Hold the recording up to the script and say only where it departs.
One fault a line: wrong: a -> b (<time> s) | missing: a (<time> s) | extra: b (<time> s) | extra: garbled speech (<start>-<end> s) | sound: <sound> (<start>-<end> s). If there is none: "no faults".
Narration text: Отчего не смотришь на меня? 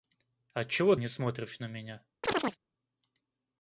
sound: chirp (2.2-2.6 s)